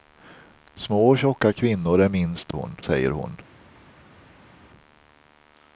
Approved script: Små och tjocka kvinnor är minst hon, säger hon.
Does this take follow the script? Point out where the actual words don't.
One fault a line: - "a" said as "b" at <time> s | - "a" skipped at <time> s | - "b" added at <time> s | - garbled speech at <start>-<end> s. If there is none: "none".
none